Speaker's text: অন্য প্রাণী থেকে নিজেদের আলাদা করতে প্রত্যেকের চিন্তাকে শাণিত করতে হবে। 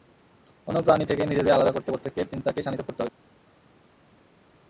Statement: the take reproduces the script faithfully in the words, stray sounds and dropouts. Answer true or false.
true